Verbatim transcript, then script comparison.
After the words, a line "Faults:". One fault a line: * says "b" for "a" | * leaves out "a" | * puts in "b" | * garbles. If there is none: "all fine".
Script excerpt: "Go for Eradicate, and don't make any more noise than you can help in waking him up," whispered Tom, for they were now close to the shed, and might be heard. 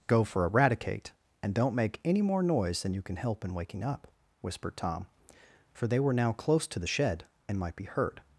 "Go for Eradicate, and don't make any more noise than you can help in waking up," whispered Tom, for they were now close to the shed, and might be heard.
Faults:
* leaves out "him"